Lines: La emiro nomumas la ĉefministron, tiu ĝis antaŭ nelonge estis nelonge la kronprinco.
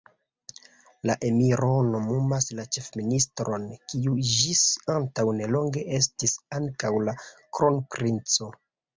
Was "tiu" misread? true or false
true